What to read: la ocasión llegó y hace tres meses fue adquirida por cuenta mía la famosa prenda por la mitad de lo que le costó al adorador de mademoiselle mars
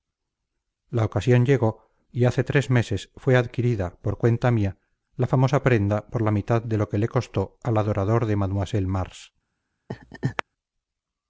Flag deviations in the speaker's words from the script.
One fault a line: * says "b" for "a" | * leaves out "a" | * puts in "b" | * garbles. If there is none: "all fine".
all fine